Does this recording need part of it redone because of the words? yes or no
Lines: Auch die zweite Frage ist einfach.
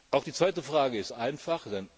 no